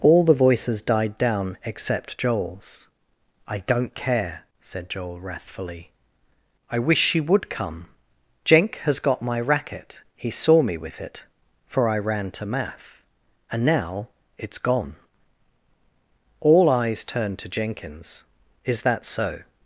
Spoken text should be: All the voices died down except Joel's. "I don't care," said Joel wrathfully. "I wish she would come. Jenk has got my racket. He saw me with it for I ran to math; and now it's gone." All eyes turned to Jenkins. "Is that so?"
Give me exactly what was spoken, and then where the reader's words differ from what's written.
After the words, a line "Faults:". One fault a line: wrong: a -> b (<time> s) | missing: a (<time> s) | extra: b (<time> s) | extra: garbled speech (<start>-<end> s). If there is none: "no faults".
All the voices died down except Joel's. "I don't care," said Joel wrathfully. "I wish she would come. Jenk has got my racket. He saw me with it for I ran to math; and now it's gone." All eyes turned to Jenkins. "Is that so?"
Faults:
no faults